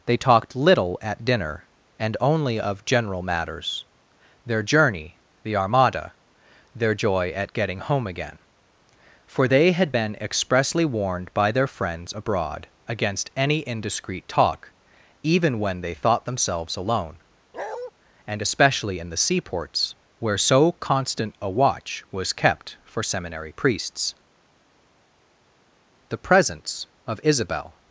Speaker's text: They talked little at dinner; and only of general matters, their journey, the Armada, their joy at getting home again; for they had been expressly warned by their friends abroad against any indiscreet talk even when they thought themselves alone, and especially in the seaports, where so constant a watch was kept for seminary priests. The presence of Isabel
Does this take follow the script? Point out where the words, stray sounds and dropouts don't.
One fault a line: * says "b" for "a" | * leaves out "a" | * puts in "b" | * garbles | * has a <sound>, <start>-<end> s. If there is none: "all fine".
* has a bark, 17.5-17.9 s